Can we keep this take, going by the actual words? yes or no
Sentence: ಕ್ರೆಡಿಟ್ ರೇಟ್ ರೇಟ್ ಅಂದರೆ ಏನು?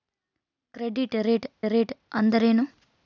yes